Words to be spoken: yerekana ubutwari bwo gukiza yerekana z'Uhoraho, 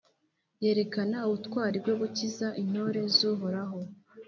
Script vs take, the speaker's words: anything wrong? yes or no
yes